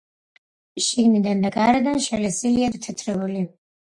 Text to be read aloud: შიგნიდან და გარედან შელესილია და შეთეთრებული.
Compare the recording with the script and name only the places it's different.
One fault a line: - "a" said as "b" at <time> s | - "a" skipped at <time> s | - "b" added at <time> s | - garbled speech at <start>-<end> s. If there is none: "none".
- "და" skipped at 2.7 s